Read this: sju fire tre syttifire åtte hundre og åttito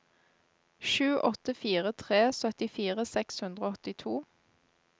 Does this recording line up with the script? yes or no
no